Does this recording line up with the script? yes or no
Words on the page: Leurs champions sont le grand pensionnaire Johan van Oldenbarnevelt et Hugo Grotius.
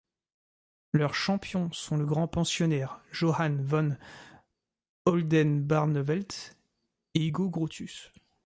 yes